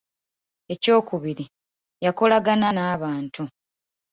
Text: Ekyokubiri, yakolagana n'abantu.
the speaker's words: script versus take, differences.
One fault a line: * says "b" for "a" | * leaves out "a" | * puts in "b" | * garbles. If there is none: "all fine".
all fine